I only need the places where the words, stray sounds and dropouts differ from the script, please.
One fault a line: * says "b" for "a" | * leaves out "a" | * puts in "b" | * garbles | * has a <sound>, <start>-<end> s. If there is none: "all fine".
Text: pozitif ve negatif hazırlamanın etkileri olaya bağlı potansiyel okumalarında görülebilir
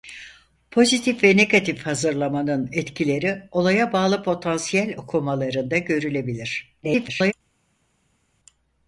* garbles